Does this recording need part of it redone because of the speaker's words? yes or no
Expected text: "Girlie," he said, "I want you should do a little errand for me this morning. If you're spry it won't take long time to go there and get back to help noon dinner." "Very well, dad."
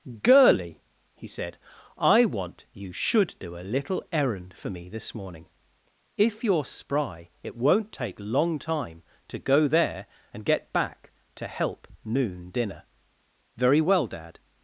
no